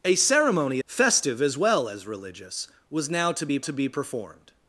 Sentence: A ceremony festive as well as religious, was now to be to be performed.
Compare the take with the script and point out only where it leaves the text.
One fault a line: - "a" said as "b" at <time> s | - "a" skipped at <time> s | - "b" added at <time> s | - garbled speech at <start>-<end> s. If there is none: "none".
none